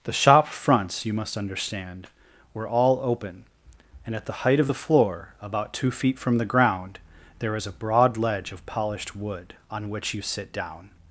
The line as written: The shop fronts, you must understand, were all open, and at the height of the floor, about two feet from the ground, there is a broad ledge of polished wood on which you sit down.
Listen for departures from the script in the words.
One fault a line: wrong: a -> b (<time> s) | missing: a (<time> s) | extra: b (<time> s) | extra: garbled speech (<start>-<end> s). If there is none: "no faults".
no faults